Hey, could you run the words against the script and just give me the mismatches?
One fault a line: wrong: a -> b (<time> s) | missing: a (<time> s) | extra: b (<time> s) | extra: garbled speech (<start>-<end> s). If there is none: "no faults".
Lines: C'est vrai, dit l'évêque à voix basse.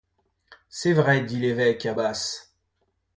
missing: voix (1.9 s)